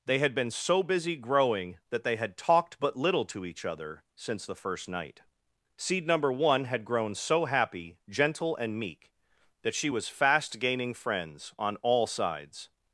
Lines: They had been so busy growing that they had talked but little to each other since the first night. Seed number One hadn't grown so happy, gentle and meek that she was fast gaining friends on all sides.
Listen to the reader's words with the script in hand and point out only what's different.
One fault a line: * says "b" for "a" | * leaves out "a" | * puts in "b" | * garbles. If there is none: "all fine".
* says "had" for "hadn't"